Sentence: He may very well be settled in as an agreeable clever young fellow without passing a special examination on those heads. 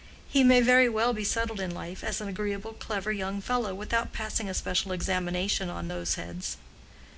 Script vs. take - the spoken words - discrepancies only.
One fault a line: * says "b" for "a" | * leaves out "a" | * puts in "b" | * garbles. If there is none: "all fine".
* puts in "life"